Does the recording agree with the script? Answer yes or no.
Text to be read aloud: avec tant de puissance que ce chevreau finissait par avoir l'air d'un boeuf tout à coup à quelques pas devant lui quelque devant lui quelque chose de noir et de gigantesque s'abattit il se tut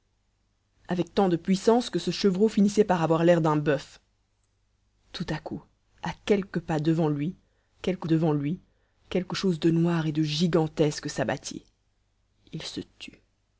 yes